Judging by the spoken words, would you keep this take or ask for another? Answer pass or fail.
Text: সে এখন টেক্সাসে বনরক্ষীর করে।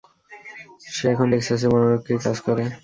fail